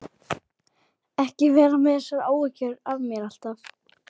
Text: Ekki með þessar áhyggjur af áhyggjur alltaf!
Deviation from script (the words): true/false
true